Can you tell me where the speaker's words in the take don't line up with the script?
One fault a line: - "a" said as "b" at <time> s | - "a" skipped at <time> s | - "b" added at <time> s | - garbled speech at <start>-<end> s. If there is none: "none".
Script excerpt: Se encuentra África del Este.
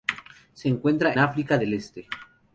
none